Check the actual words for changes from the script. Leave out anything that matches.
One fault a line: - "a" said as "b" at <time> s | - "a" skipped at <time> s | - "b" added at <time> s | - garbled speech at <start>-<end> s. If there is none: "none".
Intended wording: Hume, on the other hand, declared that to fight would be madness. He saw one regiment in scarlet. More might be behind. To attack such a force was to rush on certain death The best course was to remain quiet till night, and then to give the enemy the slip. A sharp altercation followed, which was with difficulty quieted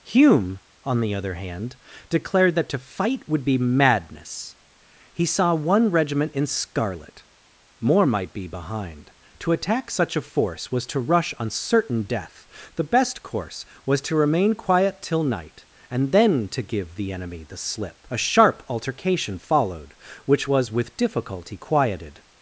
none